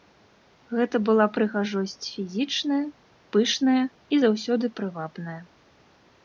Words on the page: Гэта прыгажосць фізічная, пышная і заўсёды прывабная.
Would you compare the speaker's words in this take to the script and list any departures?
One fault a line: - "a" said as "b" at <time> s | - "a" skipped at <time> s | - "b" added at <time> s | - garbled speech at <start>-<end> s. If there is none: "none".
- "была" added at 1.1 s